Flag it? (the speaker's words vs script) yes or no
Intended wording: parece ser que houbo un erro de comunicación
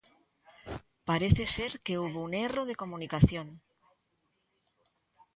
no